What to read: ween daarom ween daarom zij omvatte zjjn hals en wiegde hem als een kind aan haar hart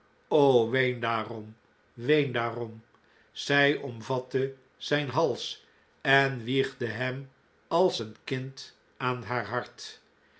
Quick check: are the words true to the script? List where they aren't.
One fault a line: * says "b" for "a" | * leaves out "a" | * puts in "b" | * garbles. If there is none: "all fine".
all fine